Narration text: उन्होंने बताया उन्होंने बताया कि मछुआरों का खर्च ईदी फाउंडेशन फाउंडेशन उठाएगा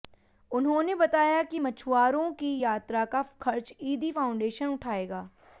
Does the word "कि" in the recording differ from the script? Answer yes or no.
yes